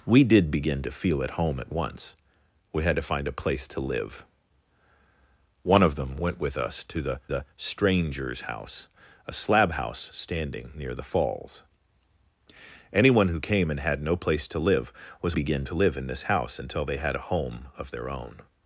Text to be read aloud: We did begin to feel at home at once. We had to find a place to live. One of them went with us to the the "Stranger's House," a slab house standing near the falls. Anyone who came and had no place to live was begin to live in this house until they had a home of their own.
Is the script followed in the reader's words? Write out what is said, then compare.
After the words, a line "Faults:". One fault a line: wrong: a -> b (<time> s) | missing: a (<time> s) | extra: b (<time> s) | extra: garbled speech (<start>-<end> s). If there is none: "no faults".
We did begin to feel at home at once. We had to find a place to live. One of them went with us to the the "Stranger's House," a slab house standing near the falls. Anyone who came and had no place to live was begin to live in this house until they had a home of their own.
Faults:
no faults